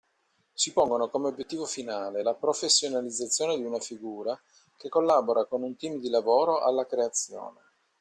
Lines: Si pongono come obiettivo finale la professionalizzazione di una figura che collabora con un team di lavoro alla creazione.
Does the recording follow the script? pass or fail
pass